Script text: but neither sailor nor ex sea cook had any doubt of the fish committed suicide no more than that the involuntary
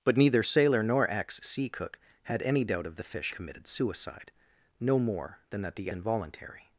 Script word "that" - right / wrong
right